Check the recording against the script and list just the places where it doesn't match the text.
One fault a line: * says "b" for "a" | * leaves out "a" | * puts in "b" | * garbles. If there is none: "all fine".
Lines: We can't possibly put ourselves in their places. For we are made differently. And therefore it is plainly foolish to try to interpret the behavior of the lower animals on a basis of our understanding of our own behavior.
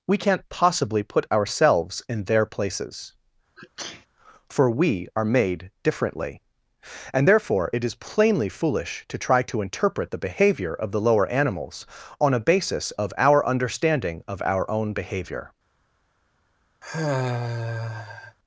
all fine